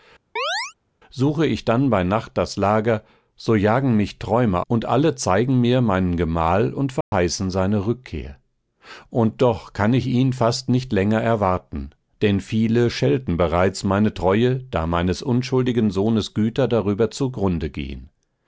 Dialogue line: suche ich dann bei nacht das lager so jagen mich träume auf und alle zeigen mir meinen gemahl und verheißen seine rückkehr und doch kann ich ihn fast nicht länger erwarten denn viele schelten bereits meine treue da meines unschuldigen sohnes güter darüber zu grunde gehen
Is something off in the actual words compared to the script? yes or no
yes